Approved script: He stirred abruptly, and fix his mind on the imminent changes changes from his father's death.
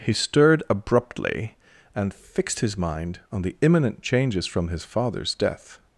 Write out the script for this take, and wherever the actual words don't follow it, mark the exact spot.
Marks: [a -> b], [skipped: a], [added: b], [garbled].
He stirred abruptly, and [fix -> fixed] his mind on the imminent changes [skipped: changes] from his father's death.